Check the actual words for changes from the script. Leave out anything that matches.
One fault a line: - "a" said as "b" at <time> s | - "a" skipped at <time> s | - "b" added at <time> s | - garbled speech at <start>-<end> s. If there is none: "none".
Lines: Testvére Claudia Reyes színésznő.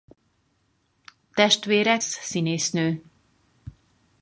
- "Claudia Reyes" skipped at 2.0 s